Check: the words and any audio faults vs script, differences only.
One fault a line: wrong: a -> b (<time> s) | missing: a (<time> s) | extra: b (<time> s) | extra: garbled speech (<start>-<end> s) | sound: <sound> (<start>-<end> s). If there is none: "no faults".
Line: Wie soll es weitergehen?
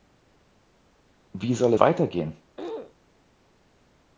missing: es (1.7 s)
sound: throat clearing (2.6-2.9 s)